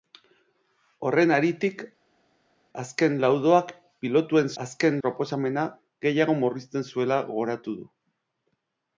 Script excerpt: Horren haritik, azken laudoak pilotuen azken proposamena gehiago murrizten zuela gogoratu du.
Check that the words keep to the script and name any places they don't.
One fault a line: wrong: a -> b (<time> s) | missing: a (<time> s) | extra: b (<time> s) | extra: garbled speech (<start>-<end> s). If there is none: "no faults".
no faults